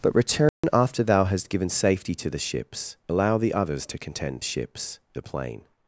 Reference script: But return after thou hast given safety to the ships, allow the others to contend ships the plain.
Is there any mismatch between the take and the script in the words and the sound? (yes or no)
yes